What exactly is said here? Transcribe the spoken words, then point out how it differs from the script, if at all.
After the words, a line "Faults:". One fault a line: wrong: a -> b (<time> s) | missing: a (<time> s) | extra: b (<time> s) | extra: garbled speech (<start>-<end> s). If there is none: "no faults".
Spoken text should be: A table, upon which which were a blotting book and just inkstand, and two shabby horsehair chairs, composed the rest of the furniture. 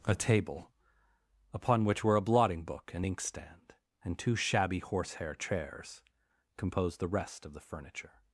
A table, upon which were a blotting book and inkstand, and two shabby horsehair chairs, composed the rest of the furniture.
Faults:
missing: which (2.0 s)
missing: just (3.0 s)